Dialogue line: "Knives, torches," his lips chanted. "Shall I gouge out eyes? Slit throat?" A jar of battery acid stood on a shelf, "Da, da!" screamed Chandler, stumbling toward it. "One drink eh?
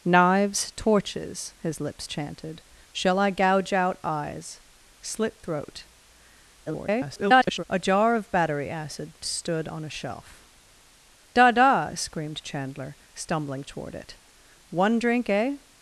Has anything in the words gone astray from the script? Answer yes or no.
yes